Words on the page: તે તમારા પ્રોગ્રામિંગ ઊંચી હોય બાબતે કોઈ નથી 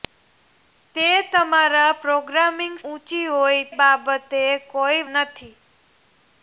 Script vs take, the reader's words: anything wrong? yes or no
no